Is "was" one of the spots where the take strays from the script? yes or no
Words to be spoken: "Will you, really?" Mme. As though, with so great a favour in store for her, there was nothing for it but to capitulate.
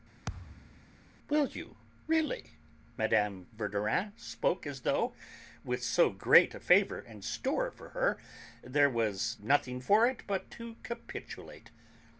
no